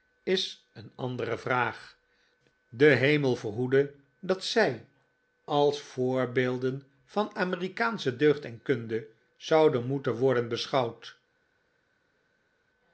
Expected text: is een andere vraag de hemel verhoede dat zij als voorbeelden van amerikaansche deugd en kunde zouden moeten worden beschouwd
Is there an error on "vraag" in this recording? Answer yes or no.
no